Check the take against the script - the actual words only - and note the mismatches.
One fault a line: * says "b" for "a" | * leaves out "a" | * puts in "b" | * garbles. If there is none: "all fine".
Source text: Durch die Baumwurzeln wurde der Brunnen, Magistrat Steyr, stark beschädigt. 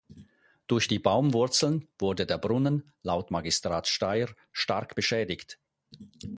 * puts in "laut"